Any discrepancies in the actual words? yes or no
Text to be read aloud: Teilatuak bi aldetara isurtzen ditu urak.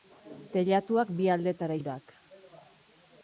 yes